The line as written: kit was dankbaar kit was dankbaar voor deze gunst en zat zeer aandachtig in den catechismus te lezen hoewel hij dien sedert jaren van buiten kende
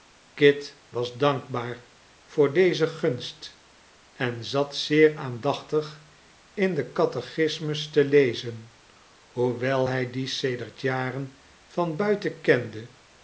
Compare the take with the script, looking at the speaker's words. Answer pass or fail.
fail